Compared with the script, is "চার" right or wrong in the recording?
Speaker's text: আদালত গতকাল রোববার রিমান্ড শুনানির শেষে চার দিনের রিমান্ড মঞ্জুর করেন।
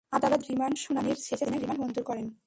wrong